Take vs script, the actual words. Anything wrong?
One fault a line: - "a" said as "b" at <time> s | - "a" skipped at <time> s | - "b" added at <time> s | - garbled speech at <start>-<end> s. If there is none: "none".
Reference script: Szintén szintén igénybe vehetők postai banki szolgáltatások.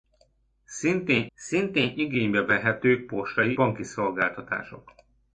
none